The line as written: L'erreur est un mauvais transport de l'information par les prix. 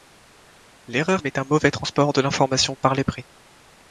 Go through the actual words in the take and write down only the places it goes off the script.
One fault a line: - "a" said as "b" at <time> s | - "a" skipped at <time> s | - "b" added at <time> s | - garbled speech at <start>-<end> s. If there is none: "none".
none